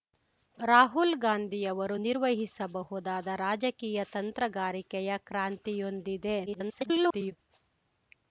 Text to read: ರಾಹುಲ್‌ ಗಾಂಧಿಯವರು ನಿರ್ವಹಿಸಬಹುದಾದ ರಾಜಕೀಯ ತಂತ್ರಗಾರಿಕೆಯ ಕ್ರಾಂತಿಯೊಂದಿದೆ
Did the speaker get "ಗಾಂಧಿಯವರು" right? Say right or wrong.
right